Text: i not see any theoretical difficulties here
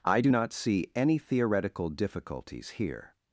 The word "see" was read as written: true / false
true